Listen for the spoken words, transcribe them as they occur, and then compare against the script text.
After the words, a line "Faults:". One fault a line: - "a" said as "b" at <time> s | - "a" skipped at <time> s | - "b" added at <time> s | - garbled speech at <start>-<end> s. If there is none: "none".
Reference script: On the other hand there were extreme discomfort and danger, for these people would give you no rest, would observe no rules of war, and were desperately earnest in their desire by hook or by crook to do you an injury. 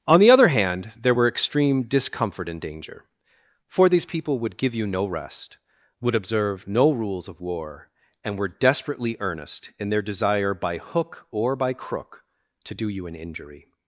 On the other hand there were extreme discomfort and danger, for these people would give you no rest, would observe no rules of war, and were desperately earnest in their desire by hook or by crook to do you an injury.
Faults:
none